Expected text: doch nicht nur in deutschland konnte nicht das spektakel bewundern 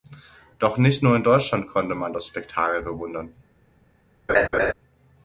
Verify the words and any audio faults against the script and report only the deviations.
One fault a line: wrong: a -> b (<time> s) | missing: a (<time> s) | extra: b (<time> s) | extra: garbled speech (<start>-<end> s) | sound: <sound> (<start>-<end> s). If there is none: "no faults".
wrong: nicht -> man (2.0 s)
sound: laugh (4.3-4.7 s)